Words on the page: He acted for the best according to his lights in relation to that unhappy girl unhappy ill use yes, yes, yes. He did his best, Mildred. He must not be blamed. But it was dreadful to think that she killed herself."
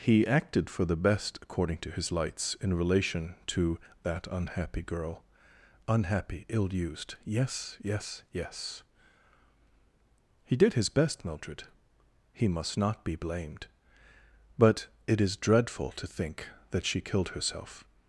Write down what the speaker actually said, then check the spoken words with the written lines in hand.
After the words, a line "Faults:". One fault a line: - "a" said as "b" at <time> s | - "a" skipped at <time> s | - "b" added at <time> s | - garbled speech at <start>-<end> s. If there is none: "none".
He acted for the best according to his lights in relation to that unhappy girl unhappy ill used yes, yes, yes. He did his best, Mildred. He must not be blamed. But it is dreadful to think that she killed herself."
Faults:
- "use" said as "used" at 6.7 s
- "was" said as "is" at 15.2 s